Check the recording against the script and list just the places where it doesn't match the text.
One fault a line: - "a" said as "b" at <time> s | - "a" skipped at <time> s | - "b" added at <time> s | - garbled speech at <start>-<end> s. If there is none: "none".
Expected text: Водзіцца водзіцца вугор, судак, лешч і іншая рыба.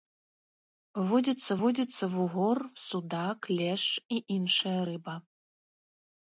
none